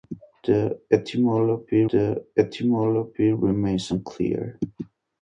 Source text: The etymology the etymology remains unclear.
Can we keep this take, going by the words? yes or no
yes